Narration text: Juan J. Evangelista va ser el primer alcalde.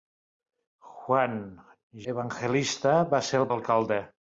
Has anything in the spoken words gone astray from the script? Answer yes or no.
yes